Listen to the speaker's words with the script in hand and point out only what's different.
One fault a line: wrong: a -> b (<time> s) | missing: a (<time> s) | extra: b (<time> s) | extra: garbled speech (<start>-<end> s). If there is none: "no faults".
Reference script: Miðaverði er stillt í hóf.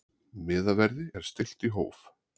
no faults